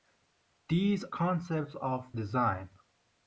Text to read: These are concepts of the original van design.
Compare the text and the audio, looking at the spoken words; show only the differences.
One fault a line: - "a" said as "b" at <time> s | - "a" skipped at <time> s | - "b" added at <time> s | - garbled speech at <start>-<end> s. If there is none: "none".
- "are" skipped at 1.1 s
- "the original van" skipped at 2.1 s